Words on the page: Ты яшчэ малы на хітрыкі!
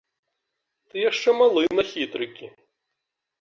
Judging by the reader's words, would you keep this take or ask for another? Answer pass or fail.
pass